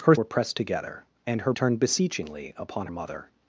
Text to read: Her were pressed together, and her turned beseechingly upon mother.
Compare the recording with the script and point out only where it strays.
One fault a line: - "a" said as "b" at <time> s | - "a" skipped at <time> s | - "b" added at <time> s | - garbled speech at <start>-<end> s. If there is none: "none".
none